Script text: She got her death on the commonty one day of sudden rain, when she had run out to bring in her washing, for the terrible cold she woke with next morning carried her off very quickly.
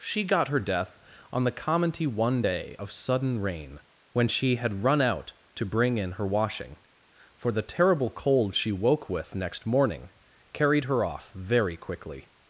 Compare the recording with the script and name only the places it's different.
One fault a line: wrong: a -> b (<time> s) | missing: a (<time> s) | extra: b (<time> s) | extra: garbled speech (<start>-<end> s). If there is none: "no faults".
no faults